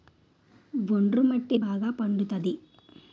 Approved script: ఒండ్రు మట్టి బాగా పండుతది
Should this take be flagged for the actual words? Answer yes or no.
no